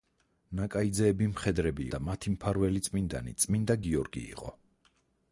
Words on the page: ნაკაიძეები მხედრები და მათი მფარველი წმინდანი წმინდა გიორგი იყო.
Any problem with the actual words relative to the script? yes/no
no